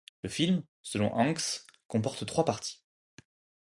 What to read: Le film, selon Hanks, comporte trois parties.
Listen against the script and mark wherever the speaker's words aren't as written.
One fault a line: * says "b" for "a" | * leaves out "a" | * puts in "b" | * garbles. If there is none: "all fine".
all fine